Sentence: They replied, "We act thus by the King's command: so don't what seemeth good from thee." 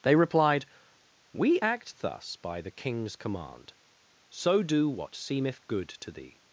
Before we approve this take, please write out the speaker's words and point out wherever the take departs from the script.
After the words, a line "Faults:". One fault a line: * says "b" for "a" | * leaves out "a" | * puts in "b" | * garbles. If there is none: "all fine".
They replied, "We act thus by the King's command: so do what seemeth good to thee."
Faults:
* says "do" for "don't"
* says "to" for "from"